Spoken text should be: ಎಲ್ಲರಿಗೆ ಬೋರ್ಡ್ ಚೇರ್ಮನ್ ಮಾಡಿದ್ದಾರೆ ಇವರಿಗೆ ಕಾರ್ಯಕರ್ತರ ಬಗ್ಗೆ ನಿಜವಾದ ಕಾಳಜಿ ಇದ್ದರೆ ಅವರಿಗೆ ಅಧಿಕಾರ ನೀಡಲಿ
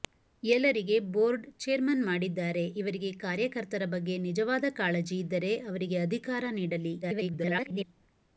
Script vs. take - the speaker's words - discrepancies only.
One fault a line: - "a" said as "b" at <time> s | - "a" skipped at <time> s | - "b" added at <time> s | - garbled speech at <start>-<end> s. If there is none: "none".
- garbled speech at 7.0-7.8 s